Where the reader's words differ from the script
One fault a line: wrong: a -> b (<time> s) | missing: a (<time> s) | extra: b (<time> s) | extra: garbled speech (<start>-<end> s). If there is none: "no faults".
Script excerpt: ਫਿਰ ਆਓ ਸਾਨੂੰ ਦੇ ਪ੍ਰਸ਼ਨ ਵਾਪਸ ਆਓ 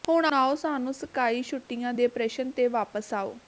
wrong: ਫਿਰ -> ਹੁਣ (0.1 s)
extra: ਸਕਾਈ ਛੁੱਟੀਆਂ (0.9 s)
extra: ਤੇ (2.5 s)